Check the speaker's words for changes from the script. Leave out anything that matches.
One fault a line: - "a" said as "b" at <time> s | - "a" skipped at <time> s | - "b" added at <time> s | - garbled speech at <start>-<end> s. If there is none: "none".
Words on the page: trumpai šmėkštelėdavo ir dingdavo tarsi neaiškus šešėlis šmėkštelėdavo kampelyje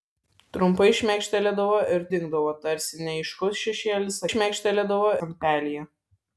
none